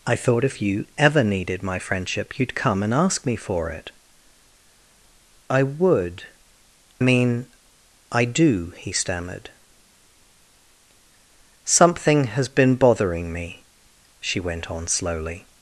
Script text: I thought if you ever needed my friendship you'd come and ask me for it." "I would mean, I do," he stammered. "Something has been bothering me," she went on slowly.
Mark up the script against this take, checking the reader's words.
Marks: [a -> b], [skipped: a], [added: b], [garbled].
I thought if you ever needed my friendship you'd come and ask me for it." "I would mean, I do," he stammered. "Something has been bothering me," she went on slowly.